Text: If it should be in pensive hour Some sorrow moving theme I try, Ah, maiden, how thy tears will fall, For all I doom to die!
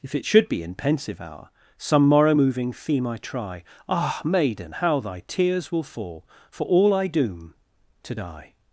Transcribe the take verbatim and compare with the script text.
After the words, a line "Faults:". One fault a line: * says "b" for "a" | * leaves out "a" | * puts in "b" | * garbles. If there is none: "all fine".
If it should be in pensive hour Some morrow moving theme I try, Ah, maiden, how thy tears will fall, For all I doom to die!
Faults:
* says "morrow" for "sorrow"